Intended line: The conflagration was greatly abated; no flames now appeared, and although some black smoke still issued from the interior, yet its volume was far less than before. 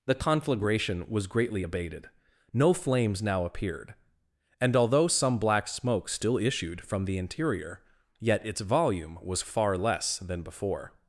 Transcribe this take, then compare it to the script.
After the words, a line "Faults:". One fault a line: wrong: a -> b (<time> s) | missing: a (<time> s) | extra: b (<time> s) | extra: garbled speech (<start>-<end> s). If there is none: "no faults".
The conflagration was greatly abated; no flames now appeared, and although some black smoke still issued from the interior, yet its volume was far less than before.
Faults:
no faults